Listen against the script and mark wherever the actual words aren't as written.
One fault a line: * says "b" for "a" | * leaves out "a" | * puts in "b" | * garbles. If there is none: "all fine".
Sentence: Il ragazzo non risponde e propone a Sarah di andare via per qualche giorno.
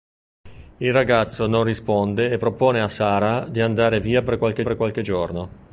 * puts in "per qualche"